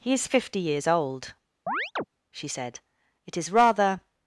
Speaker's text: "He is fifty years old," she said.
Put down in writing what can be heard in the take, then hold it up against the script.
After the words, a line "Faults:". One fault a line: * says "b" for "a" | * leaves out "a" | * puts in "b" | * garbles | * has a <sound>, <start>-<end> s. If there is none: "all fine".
"He is fifty years old," she said. "It is rather
Faults:
* has a chirp, 1.7-2.0 s
* puts in "It is rather"